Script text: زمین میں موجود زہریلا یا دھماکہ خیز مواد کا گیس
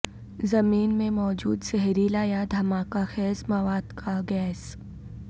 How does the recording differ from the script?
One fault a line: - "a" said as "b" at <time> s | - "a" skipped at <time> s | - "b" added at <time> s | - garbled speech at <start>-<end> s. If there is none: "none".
none